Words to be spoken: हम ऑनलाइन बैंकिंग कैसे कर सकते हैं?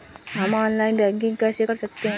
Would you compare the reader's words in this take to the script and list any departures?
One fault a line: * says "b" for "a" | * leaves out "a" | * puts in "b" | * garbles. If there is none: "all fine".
all fine